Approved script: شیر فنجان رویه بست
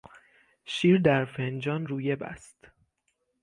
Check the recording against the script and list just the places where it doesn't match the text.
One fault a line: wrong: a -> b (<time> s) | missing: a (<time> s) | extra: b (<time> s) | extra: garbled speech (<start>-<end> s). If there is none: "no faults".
extra: در (1.0 s)